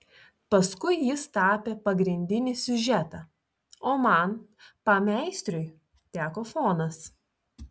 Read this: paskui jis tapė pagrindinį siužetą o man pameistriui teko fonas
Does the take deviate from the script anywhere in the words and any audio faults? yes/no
no